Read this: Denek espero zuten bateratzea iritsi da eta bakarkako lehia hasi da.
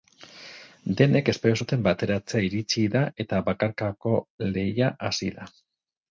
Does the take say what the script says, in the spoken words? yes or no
yes